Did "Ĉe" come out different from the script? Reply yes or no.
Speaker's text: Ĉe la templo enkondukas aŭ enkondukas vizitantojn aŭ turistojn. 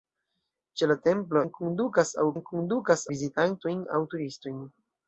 no